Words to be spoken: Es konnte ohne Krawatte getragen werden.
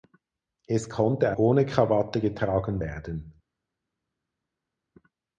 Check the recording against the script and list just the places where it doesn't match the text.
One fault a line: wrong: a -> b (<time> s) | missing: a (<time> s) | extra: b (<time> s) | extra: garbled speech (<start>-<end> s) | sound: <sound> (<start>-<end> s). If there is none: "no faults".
no faults